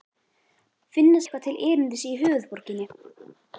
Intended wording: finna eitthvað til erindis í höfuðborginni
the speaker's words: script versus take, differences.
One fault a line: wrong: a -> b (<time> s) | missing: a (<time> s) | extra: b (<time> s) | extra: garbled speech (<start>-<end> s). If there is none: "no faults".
no faults